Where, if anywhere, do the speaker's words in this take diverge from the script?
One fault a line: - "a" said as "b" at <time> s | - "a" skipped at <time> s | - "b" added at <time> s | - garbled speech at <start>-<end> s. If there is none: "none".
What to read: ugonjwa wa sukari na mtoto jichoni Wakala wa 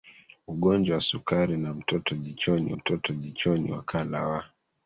- "mtoto jichoni" added at 2.7 s